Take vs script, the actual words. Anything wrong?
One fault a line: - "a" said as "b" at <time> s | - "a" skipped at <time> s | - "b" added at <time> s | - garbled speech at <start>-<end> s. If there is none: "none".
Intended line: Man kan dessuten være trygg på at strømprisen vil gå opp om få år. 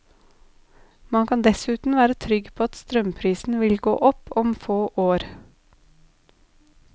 none